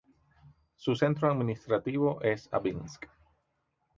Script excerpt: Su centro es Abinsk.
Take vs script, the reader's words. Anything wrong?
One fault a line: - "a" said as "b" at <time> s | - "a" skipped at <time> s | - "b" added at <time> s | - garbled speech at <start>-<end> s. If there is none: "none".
- "administrativo" added at 1.3 s